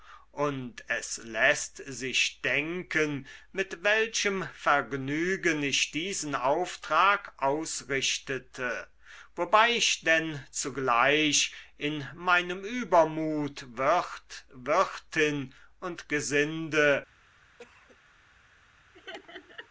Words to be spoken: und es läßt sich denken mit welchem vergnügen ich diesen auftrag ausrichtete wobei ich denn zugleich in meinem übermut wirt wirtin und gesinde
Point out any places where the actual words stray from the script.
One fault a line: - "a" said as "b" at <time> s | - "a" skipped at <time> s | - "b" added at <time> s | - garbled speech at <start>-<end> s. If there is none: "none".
none